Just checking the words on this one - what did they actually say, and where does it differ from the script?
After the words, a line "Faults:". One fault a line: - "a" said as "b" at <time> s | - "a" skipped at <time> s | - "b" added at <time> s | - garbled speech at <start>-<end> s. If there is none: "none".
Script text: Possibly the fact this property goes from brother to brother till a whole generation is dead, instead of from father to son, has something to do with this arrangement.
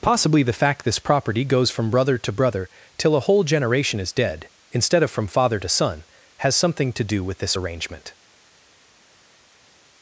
Possibly the fact this property goes from brother to brother till a whole generation is dead, instead of from father to son, has something to do with this arrangement.
Faults:
none